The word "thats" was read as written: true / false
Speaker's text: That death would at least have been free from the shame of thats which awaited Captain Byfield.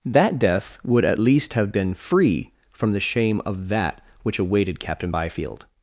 false